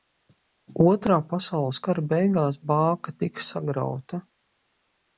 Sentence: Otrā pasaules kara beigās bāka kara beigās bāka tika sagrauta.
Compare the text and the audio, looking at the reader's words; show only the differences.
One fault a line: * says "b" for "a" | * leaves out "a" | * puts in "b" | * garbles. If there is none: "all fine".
* leaves out "kara beigās bāka"